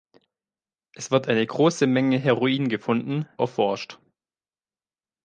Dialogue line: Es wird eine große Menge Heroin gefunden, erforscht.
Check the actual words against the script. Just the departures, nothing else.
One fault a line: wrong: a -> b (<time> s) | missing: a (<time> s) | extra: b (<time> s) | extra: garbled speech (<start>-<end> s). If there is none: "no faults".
no faults